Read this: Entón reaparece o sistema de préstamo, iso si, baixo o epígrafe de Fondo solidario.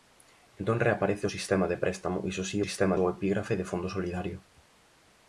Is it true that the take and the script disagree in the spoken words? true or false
true